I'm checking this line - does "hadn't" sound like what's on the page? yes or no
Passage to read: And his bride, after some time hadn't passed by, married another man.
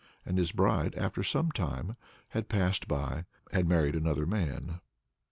no